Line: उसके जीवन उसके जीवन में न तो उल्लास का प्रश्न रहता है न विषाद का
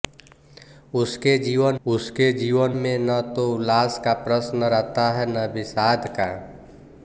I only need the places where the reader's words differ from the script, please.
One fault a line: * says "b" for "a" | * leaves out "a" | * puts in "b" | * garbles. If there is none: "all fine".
all fine